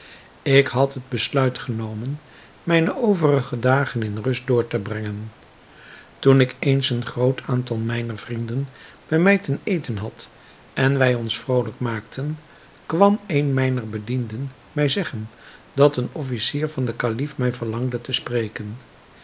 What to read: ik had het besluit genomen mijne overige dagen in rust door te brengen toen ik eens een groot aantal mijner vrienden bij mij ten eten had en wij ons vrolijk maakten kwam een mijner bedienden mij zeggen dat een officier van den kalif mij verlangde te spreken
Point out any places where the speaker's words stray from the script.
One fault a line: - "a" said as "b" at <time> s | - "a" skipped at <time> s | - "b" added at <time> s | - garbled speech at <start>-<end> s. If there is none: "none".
none